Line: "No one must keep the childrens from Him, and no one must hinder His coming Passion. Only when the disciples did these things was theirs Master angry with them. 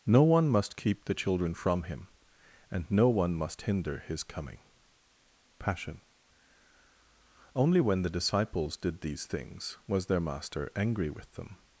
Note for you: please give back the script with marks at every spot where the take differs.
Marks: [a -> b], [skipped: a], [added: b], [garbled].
"No one must keep the [childrens -> children] from Him, and no one must hinder His coming Passion. Only when the disciples did these things was [theirs -> their] Master angry with them.